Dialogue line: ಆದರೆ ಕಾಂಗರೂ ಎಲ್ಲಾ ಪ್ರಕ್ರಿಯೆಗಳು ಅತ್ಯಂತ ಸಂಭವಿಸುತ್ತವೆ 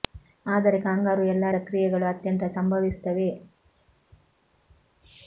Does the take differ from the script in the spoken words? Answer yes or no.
no